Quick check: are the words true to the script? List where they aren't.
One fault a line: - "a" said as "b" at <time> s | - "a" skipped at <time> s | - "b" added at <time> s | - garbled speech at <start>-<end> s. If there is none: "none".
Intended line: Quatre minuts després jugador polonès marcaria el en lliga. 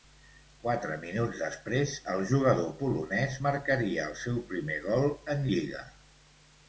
- "el" added at 2.1 s
- "seu primer gol" added at 4.2 s